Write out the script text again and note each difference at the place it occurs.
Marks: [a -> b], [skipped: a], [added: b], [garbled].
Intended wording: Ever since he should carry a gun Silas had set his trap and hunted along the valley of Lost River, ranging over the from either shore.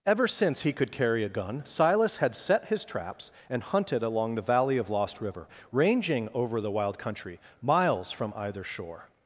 Ever since he [should -> could] carry a gun Silas had set his [trap -> traps] and hunted along the valley of Lost River, ranging over the [added: wild country miles] from either shore.